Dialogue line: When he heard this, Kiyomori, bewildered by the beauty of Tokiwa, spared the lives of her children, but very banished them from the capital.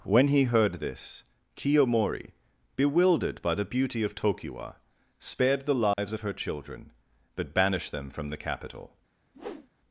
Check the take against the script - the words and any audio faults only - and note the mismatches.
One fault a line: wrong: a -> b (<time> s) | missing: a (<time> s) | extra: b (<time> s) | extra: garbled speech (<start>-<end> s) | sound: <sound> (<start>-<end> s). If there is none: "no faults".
sound: dropout (5.9-6.0 s)
missing: very (7.5 s)
sound: whoosh (9.3-9.7 s)